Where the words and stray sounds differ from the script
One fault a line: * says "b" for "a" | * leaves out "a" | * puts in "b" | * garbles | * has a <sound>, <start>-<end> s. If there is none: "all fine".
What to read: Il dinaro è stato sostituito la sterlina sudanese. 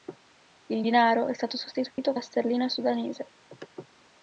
* has a dropout, 1.9-2.0 s